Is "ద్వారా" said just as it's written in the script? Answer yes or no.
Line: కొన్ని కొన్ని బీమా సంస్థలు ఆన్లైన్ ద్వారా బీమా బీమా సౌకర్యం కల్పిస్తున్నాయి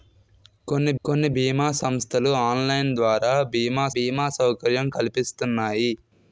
yes